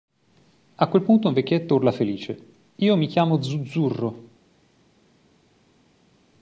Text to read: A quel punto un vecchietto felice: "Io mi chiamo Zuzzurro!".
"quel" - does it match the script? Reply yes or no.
yes